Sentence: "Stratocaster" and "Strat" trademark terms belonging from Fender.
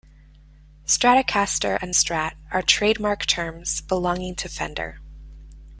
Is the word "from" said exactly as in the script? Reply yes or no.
no